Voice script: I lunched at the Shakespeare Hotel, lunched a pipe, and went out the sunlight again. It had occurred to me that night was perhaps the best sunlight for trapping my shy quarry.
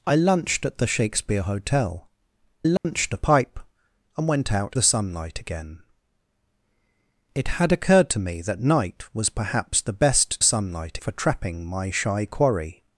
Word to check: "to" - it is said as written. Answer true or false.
true